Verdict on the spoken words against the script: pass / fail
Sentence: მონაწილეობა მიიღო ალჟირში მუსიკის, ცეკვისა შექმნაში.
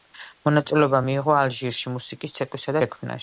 pass